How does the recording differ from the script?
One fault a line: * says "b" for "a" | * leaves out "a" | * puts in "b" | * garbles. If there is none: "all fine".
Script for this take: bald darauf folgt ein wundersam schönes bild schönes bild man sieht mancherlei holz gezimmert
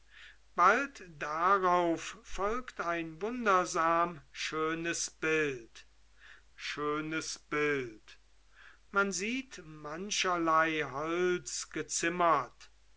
all fine